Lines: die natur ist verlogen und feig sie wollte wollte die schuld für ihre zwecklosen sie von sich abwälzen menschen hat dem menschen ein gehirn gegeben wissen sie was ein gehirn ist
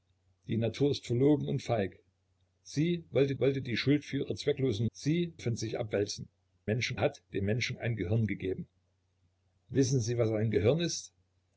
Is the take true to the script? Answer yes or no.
yes